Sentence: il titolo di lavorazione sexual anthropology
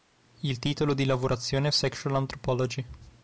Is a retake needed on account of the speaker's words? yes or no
no